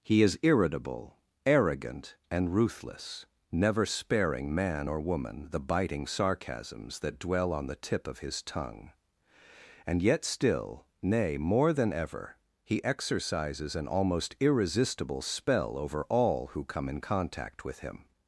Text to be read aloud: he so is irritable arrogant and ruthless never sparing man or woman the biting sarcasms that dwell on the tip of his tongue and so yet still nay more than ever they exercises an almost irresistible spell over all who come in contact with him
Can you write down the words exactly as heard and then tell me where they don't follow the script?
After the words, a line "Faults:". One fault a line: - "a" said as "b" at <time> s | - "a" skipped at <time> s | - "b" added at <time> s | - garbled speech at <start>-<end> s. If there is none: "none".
he is irritable arrogant and ruthless never sparing man or woman the biting sarcasms that dwell on the tip of his tongue and yet still nay more than ever he exercises an almost irresistible spell over all who come in contact with him
Faults:
- "so" skipped at 0.2 s
- "so" skipped at 10.0 s
- "they" said as "he" at 12.6 s